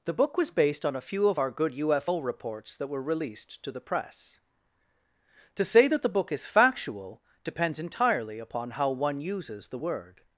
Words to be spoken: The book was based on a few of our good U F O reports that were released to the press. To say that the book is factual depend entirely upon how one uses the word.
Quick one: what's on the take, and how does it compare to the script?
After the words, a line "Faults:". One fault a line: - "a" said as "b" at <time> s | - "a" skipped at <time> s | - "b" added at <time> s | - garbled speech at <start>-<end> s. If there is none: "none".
The book was based on a few of our good U F O reports that were released to the press. To say that the book is factual depends entirely upon how one uses the word.
Faults:
- "depend" said as "depends" at 7.4 s